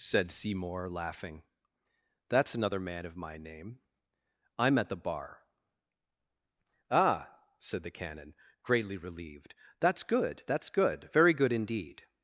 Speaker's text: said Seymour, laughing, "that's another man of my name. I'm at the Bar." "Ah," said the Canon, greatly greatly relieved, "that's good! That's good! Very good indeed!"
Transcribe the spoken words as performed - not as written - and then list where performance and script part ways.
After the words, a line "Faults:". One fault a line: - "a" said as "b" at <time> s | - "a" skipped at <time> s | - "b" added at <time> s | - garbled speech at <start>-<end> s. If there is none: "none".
said Seymour, laughing, "that's another man of my name. I'm at the Bar." "Ah," said the Canon, greatly relieved, "that's good! That's good! Very good indeed!"
Faults:
- "greatly" skipped at 9.0 s